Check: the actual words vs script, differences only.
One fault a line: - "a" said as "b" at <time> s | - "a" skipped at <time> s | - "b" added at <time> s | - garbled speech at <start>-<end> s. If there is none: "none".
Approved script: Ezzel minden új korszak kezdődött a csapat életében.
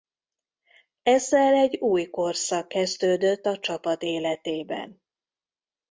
- "minden" said as "egy" at 1.5 s